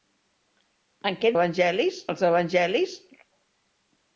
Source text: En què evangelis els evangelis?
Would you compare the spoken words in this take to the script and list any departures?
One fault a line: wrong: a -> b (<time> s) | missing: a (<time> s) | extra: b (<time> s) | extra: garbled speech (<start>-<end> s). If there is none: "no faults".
no faults